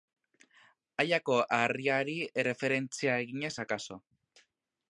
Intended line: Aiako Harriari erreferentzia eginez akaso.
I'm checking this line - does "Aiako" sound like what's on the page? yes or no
yes